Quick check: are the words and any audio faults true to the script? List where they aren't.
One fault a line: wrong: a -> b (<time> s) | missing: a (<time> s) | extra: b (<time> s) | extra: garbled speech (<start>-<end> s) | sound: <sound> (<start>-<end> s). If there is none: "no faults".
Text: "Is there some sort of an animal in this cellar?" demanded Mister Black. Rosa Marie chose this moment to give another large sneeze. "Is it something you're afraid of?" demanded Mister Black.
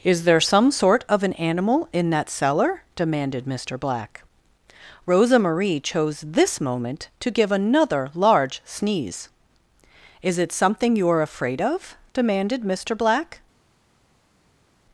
wrong: this -> that (2.1 s)